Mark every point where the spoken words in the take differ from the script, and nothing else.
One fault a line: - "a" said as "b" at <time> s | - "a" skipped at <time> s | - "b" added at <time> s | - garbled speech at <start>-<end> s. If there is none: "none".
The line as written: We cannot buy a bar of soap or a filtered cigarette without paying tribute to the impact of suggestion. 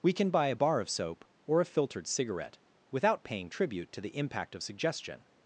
- "cannot" said as "can" at 0.1 s